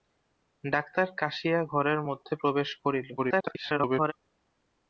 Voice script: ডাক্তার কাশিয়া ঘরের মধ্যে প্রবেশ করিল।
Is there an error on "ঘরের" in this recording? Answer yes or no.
no